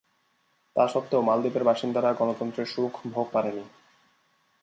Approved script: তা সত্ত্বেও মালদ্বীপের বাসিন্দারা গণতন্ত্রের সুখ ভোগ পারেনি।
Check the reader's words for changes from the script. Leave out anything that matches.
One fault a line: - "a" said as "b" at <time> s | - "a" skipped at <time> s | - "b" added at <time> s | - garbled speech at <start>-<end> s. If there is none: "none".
none